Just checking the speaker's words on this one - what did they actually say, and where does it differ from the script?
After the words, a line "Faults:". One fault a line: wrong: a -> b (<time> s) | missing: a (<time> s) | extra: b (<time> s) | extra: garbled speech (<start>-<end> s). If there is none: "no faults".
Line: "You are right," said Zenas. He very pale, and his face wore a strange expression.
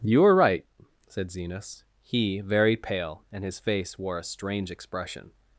"You are right," said Zenas. He very pale, and his face wore a strange expression.
Faults:
no faults